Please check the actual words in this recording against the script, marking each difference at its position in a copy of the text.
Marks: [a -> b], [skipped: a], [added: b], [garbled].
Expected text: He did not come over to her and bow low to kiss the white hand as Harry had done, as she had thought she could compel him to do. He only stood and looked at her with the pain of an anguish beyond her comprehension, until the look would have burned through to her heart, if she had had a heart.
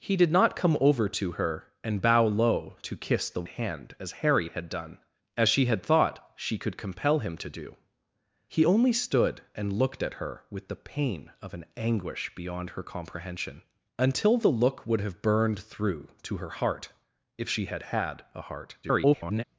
He did not come over to her and bow low to kiss the [skipped: white] hand as Harry had done, as she had thought she could compel him to do. He only stood and looked at her with the pain of an anguish beyond her comprehension, until the look would have burned through to her heart, if she had had a heart. [garbled]